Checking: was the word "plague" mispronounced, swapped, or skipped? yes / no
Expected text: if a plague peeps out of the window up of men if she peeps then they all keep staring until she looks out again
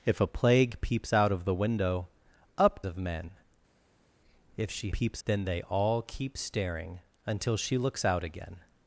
no